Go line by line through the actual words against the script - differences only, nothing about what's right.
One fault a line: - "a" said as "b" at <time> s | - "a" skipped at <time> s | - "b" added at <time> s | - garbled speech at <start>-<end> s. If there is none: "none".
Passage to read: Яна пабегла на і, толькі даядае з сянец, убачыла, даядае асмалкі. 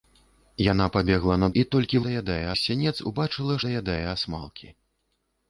none